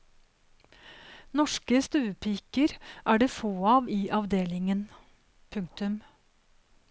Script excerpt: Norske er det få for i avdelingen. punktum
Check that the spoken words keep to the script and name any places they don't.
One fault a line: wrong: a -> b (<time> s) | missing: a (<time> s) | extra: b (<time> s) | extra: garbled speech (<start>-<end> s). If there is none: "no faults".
extra: stuepiker (1.9 s)
wrong: for -> av (3.7 s)